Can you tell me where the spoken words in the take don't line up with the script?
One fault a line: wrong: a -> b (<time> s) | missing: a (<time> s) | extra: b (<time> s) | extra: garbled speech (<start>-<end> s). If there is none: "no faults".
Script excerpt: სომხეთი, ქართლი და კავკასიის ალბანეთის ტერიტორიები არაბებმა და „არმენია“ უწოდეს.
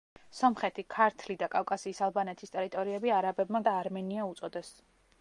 no faults